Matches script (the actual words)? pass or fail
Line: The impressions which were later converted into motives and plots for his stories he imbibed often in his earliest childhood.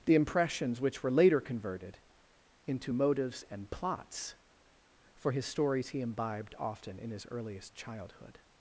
pass